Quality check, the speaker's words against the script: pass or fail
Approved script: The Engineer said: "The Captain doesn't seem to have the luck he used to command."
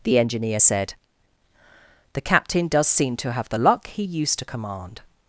fail